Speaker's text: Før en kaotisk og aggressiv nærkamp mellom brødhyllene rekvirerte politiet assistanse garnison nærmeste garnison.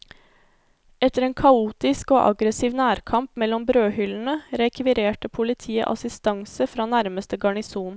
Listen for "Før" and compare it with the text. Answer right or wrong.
wrong